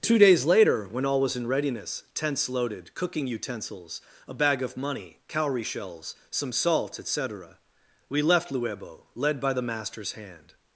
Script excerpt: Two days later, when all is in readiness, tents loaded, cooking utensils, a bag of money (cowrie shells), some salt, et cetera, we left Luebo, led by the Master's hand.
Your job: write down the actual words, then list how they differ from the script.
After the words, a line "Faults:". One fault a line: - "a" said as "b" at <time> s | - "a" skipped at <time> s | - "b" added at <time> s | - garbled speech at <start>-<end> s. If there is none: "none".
Two days later, when all was in readiness, tents loaded, cooking utensils, a bag of money (cowrie shells), some salt, et cetera, we left Luebo, led by the Master's hand.
Faults:
- "is" said as "was" at 1.2 s